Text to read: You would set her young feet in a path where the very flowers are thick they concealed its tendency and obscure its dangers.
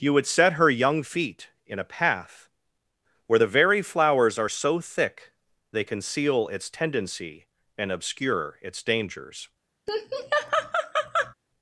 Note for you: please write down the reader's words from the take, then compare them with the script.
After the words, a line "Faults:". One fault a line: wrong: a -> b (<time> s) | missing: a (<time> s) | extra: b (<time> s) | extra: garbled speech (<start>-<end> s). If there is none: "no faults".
You would set her young feet in a path where the very flowers are so thick they conceal its tendency and obscure its dangers.
Faults:
extra: so (4.5 s)
wrong: concealed -> conceal (5.8 s)